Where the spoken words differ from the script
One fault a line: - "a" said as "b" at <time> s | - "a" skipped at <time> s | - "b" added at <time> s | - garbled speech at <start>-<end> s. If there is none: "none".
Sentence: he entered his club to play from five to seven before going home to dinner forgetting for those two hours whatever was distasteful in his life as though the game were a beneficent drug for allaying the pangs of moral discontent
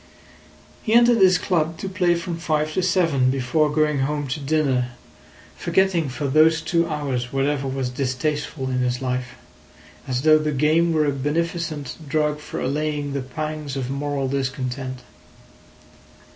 none